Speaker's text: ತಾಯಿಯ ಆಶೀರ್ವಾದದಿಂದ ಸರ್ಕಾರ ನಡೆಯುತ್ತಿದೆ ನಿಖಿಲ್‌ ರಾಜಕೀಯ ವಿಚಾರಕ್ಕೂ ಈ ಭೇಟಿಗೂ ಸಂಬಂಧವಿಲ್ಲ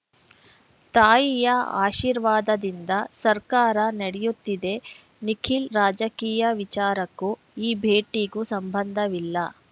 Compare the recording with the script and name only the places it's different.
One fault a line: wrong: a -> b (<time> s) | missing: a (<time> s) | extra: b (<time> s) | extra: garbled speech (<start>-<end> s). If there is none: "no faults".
no faults